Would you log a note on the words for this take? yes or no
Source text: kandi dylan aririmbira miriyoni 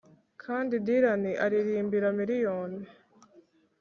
no